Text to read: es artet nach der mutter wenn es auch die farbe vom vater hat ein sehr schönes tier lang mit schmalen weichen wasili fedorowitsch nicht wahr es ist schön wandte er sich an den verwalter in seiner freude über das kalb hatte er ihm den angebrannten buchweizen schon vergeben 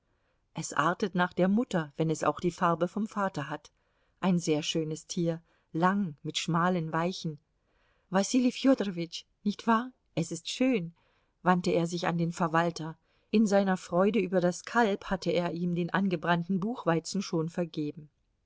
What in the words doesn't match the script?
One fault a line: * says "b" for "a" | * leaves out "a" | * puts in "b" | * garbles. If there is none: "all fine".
all fine